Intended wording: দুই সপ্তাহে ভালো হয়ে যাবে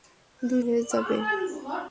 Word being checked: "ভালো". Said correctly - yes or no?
no